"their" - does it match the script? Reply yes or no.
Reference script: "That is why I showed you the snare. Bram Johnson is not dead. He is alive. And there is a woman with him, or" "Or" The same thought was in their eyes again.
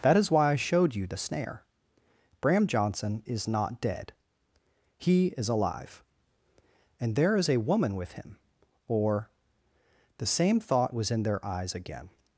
yes